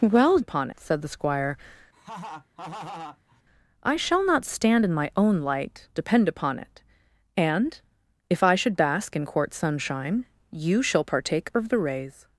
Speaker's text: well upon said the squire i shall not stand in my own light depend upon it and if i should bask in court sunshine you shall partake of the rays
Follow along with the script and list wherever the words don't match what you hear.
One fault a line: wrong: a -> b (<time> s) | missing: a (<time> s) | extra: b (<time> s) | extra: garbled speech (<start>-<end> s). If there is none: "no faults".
no faults